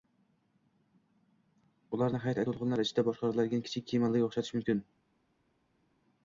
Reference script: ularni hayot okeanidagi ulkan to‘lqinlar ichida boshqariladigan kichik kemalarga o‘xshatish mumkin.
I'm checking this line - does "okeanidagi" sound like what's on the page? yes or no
no